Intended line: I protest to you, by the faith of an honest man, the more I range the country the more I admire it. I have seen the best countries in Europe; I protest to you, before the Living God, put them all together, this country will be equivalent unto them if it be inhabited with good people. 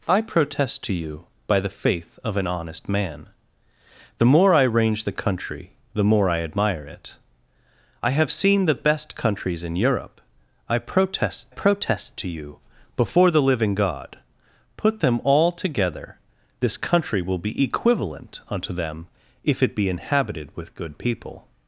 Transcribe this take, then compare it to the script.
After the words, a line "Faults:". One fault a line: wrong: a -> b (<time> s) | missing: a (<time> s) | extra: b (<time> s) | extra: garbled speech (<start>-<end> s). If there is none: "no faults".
I protest to you, by the faith of an honest man, the more I range the country the more I admire it. I have seen the best countries in Europe; I protest protest to you, before the Living God, put them all together, this country will be equivalent unto them if it be inhabited with good people.
Faults:
extra: protest (11.5 s)